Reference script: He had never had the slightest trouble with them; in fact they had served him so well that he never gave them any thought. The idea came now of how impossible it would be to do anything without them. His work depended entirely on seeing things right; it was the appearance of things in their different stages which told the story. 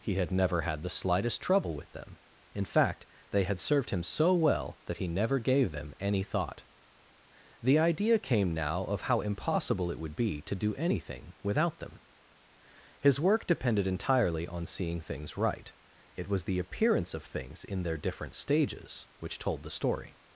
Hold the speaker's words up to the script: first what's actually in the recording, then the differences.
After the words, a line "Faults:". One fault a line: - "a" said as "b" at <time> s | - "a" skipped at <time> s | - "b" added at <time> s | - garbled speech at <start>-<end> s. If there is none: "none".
He had never had the slightest trouble with them; in fact they had served him so well that he never gave them any thought. The idea came now of how impossible it would be to do anything without them. His work depended entirely on seeing things right; it was the appearance of things in their different stages which told the story.
Faults:
none